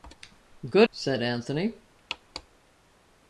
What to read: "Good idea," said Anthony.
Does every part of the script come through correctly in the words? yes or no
no